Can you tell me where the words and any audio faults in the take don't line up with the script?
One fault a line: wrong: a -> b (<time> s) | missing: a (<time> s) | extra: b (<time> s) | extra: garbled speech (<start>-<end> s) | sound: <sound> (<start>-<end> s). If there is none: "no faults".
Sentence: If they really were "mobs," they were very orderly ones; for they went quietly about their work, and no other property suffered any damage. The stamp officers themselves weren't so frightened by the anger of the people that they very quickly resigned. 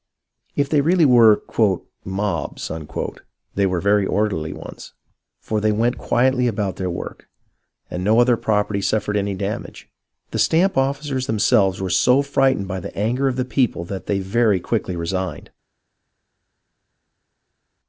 wrong: weren't -> were (11.8 s)